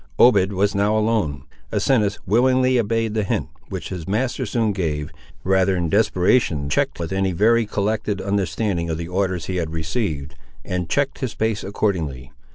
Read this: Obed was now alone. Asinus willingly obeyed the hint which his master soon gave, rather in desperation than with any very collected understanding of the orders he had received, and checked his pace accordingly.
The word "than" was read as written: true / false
false